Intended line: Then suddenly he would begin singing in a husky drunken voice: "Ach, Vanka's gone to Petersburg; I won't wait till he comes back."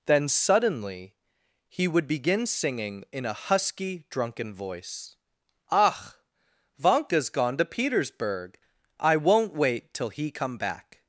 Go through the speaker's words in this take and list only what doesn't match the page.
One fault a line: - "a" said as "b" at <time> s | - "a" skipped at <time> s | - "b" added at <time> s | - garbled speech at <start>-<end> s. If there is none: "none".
- "comes" said as "come" at 10.3 s